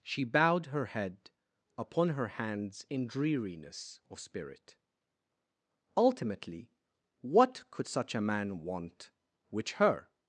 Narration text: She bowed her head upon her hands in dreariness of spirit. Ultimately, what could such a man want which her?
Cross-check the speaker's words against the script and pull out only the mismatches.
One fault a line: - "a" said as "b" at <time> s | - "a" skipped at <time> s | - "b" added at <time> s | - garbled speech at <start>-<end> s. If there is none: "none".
none